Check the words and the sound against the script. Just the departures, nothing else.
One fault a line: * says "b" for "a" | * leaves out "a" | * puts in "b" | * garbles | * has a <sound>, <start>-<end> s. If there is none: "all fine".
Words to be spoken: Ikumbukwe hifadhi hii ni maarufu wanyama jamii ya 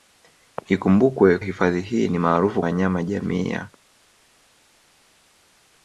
all fine